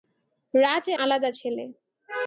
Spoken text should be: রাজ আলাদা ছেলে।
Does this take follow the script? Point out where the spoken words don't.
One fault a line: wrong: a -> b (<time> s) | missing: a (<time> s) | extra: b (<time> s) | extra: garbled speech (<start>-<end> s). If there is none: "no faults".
no faults